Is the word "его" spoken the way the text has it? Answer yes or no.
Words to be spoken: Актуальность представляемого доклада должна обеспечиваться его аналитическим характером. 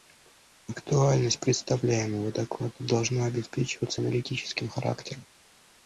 no